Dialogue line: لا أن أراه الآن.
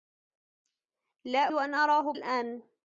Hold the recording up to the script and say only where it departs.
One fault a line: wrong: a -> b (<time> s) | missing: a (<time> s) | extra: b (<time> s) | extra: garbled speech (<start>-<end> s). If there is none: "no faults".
no faults